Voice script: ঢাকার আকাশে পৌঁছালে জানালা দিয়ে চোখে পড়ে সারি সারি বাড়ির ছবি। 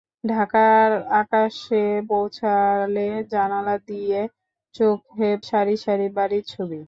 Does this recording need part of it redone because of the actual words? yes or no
yes